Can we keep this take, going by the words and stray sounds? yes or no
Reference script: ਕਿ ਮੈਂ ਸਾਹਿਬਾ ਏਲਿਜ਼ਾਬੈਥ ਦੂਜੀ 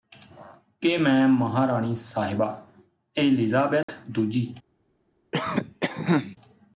no